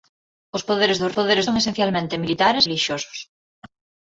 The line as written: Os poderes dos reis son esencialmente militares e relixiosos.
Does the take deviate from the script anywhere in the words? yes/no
yes